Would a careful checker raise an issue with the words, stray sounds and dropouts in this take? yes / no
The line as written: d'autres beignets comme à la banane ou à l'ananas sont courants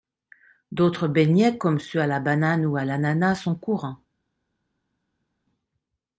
yes